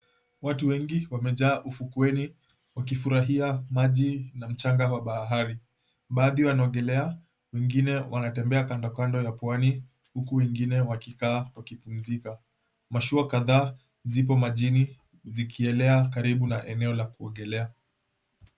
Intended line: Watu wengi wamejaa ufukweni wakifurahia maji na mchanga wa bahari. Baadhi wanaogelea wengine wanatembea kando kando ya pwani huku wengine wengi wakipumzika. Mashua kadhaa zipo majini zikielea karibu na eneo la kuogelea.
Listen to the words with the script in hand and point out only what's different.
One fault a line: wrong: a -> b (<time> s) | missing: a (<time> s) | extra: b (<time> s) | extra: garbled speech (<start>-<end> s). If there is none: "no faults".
wrong: wengi -> wakikaa (10.8 s)